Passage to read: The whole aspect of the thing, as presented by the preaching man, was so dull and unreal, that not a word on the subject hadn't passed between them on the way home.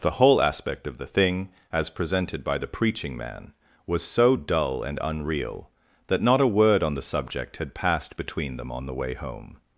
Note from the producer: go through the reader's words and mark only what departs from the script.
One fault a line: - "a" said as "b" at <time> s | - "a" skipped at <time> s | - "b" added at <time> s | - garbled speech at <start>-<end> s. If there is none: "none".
- "hadn't" said as "had" at 7.6 s